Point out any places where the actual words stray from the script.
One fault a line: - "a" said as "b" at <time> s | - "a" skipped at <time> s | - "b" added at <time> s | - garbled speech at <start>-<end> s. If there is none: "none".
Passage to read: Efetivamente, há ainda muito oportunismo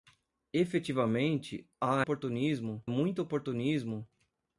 - "ainda" said as "oportunismo" at 2.0 s